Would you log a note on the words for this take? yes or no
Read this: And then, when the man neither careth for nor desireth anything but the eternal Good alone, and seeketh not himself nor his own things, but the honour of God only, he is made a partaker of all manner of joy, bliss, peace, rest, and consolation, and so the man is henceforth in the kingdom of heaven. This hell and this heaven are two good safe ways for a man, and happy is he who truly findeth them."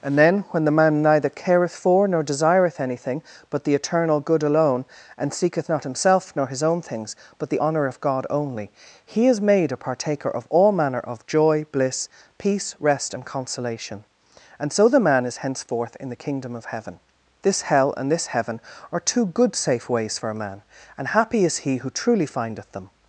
no